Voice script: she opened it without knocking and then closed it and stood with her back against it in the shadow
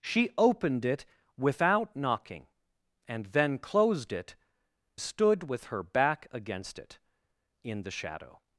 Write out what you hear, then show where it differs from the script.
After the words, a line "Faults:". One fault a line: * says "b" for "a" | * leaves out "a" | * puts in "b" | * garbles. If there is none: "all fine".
she opened it without knocking and then closed it stood with her back against it in the shadow
Faults:
* leaves out "and"